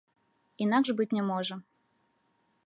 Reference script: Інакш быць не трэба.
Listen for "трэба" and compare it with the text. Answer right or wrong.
wrong